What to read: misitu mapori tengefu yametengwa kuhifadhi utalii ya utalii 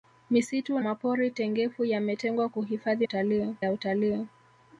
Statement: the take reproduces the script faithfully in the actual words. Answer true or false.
true